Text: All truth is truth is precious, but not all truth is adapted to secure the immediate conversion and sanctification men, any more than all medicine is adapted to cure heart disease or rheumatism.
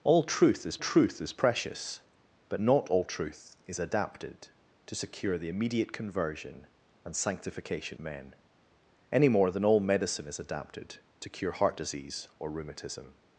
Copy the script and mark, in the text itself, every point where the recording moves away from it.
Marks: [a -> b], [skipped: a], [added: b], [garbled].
All truth is truth is precious, but not all truth is adapted to secure the immediate conversion and sanctification men, any more than all medicine is adapted to cure heart disease or rheumatism.